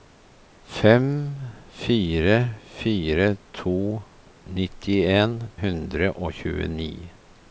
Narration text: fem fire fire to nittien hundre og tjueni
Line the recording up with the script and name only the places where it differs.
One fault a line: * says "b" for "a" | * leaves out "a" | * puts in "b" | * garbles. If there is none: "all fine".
all fine